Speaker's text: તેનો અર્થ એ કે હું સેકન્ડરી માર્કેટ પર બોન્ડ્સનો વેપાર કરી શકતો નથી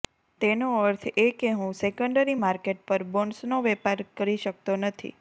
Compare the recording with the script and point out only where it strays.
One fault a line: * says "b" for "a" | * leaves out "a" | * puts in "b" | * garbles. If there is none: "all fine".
all fine